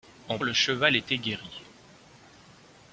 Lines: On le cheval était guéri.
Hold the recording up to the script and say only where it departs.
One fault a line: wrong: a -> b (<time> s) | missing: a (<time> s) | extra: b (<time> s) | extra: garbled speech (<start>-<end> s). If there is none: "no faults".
no faults